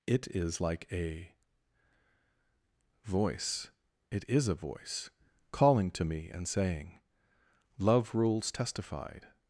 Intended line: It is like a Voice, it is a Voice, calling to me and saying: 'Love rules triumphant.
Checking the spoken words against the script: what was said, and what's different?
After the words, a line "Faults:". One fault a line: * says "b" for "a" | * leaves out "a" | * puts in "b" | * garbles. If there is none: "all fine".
It is like a Voice, it is a Voice, calling to me and saying: 'Love rules testified.
Faults:
* says "testified" for "triumphant"